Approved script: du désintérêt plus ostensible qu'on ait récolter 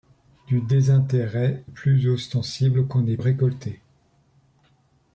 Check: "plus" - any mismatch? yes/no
no